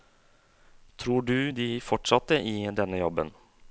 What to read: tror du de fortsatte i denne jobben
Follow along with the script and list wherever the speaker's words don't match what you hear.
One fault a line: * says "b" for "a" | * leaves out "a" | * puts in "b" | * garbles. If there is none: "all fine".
all fine